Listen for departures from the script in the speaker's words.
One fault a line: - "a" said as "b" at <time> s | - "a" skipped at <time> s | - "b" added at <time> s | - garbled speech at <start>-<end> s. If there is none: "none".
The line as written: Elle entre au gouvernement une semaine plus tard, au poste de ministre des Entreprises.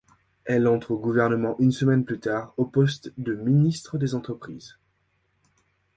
none